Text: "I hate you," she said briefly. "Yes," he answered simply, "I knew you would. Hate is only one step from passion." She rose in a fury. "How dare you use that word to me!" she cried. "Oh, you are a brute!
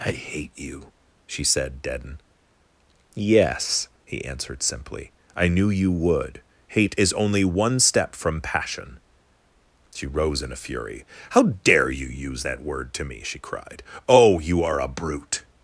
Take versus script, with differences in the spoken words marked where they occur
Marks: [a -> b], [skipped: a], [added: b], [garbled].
"I hate you," she said [briefly. -> deaden] "Yes," he answered simply, "I knew you would. Hate is only one step from passion." She rose in a fury. "How dare you use that word to me!" she cried. "Oh, you are a brute!